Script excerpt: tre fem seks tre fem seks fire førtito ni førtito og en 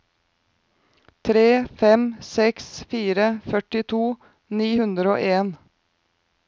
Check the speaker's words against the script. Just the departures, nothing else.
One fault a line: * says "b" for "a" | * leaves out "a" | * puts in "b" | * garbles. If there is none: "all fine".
* leaves out "tre fem seks"
* says "hundre" for "førtito"